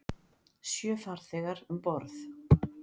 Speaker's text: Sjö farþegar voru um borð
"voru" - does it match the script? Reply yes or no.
no